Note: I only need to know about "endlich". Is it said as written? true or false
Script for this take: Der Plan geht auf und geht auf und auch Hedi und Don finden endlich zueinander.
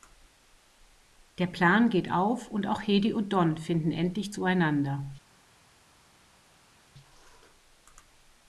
true